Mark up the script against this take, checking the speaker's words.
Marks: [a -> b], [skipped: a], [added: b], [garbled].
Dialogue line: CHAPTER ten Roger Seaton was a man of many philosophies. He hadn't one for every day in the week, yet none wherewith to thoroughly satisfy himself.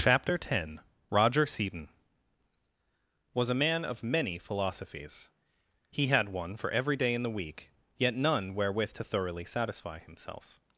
CHAPTER ten Roger Seaton was a man of many philosophies. He [hadn't -> had] one for every day in the week, yet none wherewith to thoroughly satisfy himself.